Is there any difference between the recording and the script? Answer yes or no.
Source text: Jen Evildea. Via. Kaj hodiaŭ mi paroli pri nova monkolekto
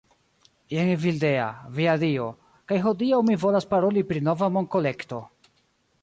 yes